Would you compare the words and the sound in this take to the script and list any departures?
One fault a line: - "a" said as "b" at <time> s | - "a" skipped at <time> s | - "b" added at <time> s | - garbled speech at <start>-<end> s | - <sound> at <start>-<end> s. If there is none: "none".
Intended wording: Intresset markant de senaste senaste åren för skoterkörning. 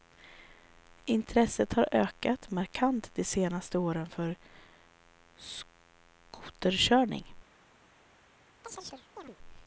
- "har ökat" added at 1.7 s
- "senaste" skipped at 3.8 s
- chirp at 8.6-9.4 s